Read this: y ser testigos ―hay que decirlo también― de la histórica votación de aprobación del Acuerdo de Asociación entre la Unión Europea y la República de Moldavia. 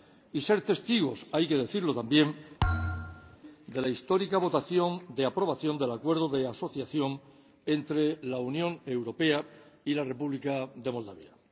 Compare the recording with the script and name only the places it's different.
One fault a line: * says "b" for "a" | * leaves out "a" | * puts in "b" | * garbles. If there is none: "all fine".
all fine